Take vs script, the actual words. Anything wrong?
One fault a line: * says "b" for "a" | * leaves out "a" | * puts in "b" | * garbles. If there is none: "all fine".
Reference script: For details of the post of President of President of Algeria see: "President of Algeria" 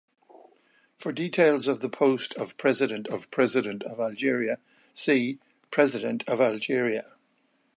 all fine